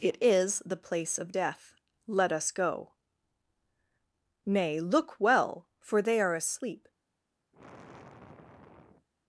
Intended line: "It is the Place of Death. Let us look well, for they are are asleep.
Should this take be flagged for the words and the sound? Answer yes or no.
yes